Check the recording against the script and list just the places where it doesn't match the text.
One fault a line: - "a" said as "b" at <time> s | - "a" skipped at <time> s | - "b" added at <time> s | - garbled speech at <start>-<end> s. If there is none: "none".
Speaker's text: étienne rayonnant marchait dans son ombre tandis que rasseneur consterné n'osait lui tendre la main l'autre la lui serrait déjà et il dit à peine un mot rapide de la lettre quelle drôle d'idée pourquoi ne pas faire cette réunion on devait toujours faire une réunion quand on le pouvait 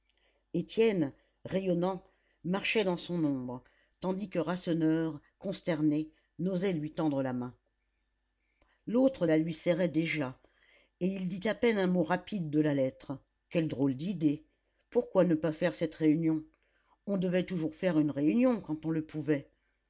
none